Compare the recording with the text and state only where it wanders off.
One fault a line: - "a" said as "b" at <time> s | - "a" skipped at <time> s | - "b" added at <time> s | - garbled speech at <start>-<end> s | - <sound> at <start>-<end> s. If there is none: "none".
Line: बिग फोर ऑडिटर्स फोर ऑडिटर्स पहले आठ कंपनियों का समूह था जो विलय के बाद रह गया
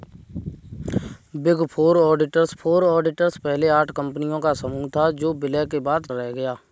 none